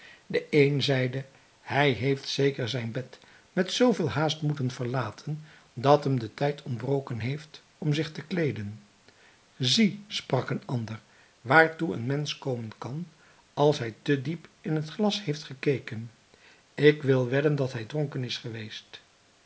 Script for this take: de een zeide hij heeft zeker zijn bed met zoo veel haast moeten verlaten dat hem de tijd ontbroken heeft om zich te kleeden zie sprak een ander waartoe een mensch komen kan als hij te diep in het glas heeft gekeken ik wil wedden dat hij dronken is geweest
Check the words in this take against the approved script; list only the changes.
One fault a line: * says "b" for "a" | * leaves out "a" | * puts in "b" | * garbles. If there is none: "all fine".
all fine